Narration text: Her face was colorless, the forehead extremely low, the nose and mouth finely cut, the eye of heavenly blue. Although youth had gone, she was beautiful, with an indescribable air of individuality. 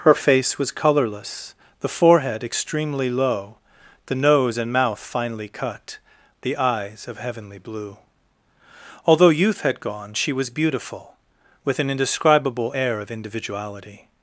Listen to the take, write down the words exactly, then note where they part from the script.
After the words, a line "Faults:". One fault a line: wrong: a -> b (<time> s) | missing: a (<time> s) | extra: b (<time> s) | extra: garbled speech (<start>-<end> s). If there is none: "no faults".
Her face was colorless, the forehead extremely low, the nose and mouth finely cut, the eyes of heavenly blue. Although youth had gone, she was beautiful, with an indescribable air of individuality.
Faults:
wrong: eye -> eyes (6.6 s)